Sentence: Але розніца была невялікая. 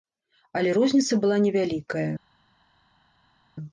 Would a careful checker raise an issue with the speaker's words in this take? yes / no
no